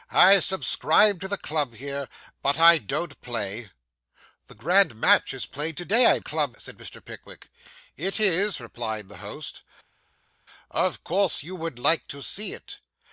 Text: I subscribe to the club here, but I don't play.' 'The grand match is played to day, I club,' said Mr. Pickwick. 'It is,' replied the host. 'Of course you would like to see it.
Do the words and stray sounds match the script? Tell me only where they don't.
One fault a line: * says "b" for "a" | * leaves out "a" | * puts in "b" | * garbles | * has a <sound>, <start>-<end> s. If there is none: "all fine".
all fine